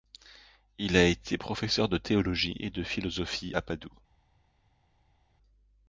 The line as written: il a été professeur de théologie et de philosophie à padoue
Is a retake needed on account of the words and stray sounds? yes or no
no